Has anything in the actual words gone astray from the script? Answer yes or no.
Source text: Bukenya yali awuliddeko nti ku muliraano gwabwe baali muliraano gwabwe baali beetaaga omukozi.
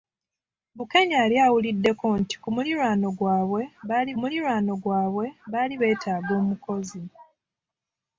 no